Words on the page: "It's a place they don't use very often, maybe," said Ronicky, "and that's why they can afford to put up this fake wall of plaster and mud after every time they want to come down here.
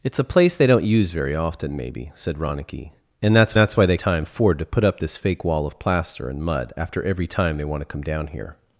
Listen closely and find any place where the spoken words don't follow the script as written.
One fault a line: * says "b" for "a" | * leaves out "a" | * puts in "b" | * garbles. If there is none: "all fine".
* puts in "that's"
* says "time" for "can"